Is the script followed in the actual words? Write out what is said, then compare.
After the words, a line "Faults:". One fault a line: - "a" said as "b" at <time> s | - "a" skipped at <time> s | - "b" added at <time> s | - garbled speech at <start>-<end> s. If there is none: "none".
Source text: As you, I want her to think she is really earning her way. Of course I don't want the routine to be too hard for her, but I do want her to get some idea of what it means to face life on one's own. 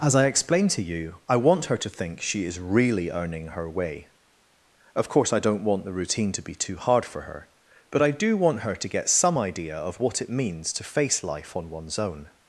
As I explained to you, I want her to think she is really earning her way. Of course I don't want the routine to be too hard for her, but I do want her to get some idea of what it means to face life on one's own.
Faults:
- "I explained to" added at 0.1 s